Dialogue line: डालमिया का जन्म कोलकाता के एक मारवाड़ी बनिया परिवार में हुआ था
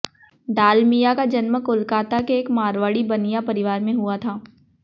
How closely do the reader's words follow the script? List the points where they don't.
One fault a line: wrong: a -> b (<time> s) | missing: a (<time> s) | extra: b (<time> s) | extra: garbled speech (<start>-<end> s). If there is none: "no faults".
no faults